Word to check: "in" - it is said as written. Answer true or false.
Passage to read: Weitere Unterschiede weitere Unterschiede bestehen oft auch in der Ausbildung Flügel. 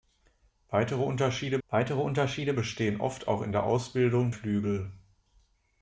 true